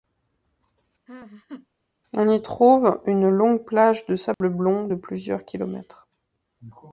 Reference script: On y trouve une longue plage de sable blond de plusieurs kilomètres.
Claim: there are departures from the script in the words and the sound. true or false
true